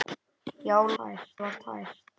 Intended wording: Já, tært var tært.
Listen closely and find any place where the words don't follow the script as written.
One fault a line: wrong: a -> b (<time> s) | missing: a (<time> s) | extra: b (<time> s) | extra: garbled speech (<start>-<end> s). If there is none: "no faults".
no faults